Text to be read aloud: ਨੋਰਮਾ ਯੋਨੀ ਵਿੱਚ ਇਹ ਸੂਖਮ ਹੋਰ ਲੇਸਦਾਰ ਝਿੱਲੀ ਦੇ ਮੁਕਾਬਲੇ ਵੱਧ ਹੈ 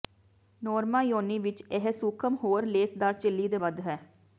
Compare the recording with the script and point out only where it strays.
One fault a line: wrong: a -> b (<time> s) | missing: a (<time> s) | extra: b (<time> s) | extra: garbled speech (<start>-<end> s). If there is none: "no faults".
missing: ਮੁਕਾਬਲੇ (3.6 s)